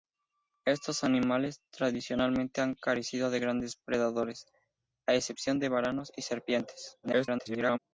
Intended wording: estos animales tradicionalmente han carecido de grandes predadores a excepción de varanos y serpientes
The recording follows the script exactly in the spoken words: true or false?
false